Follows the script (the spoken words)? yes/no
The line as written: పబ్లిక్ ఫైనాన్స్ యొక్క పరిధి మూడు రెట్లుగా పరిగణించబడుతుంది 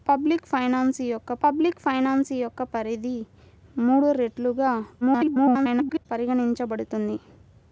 no